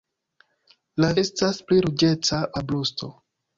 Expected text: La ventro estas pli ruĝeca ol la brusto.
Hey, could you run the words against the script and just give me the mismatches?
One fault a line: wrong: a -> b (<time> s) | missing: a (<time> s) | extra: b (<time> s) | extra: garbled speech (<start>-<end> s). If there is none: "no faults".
missing: ventro (1.1 s)
missing: ol (2.4 s)